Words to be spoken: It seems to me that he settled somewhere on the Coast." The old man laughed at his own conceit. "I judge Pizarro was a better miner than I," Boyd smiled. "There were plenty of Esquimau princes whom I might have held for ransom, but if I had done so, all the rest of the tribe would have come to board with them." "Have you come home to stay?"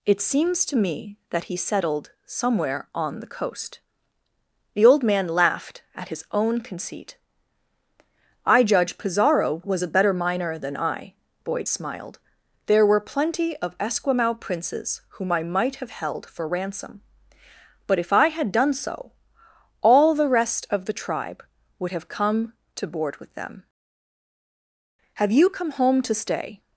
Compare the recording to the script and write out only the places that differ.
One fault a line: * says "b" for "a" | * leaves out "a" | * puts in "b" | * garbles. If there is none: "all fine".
all fine